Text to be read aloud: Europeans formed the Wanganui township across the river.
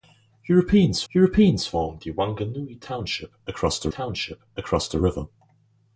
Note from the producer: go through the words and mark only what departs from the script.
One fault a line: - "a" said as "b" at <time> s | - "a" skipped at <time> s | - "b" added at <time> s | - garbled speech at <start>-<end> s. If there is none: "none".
- "europeans" added at 1.1 s
- "township across the" added at 3.9 s